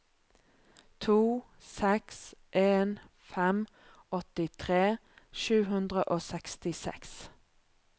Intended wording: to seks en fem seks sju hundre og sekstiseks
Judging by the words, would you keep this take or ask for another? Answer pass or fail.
fail